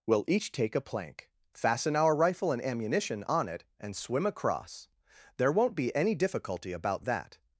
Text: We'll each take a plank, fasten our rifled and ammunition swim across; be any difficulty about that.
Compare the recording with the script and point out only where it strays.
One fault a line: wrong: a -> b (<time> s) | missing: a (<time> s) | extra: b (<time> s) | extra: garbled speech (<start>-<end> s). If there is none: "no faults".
wrong: rifled -> rifle (2.1 s)
extra: on it and (3.3 s)
extra: there won't (5.4 s)